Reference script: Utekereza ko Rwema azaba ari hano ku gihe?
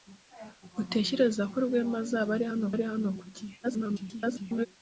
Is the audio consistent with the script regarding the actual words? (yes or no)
no